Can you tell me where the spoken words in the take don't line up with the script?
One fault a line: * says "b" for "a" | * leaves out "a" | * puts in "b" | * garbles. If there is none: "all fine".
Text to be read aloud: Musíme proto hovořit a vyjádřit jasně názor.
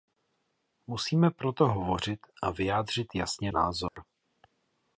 all fine